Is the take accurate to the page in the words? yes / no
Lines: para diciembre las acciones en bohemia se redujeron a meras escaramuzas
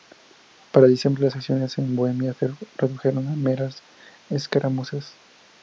yes